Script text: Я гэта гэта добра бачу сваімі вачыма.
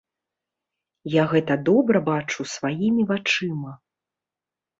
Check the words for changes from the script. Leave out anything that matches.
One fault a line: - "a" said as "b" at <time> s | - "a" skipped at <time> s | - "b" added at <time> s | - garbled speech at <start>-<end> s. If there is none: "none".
- "гэта" skipped at 1.6 s